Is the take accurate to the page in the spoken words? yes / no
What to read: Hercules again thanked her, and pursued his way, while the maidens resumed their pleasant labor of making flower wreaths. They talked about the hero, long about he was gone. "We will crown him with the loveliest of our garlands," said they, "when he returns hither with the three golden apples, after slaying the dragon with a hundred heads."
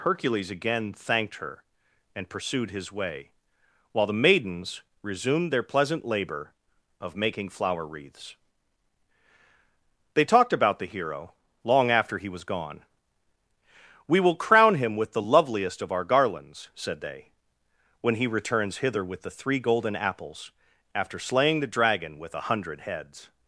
no